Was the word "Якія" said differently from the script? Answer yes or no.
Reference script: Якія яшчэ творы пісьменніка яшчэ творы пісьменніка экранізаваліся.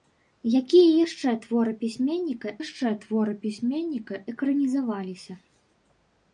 no